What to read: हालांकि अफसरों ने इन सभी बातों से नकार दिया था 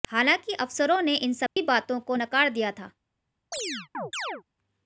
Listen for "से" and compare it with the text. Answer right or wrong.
wrong